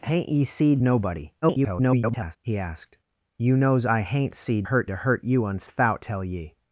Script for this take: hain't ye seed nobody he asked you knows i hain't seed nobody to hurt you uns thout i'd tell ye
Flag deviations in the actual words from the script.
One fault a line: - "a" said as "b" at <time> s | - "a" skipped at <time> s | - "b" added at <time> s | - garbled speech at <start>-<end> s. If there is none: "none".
- garbled speech at 1.4-2.4 s
- "nobody" said as "hurt" at 4.6 s
- "i'd" skipped at 6.0 s